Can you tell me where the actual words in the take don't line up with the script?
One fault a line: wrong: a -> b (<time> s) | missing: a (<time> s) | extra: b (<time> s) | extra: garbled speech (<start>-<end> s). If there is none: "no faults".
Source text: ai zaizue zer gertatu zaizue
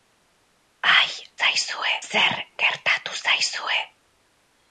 no faults